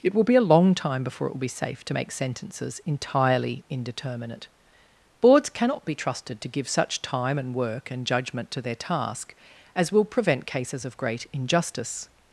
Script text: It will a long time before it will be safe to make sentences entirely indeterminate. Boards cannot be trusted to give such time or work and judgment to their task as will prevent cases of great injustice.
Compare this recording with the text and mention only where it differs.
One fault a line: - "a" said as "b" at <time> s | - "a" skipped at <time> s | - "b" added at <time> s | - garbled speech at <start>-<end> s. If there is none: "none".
- "be" added at 0.2 s
- "or" said as "and" at 7.4 s